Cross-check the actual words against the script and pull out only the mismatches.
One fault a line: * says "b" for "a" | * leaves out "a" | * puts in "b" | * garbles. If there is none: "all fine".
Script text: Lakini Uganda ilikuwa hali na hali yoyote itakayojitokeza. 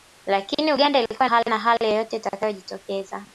all fine